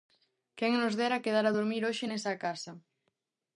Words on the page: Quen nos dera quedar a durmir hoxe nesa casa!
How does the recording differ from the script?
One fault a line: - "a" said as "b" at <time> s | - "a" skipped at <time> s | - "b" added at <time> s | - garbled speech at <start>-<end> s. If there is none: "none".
none